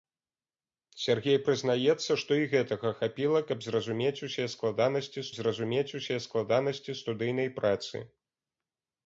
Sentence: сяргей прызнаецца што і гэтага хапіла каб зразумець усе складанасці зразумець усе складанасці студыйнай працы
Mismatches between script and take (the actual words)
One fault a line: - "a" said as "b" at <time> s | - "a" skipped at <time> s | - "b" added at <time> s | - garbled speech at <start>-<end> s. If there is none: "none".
none